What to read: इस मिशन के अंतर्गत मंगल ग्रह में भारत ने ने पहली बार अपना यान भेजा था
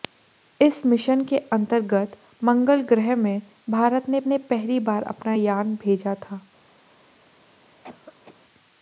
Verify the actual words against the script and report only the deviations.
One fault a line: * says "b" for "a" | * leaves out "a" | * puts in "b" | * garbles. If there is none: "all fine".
all fine